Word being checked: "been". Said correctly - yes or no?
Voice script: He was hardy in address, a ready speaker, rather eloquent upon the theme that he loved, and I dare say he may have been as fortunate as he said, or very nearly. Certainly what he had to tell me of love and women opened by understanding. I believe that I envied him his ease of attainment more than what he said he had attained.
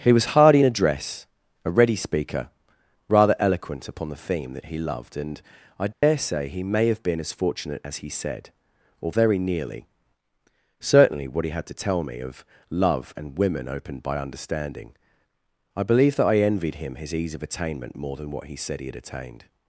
yes